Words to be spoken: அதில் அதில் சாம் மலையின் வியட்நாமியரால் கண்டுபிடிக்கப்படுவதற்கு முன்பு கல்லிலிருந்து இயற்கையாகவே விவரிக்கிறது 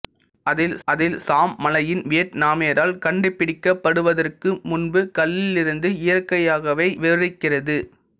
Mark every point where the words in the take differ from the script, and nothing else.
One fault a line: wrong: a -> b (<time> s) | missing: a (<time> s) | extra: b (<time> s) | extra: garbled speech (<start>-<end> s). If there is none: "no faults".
no faults